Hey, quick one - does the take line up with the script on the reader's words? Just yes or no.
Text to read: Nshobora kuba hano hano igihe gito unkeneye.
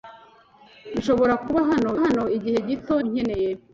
yes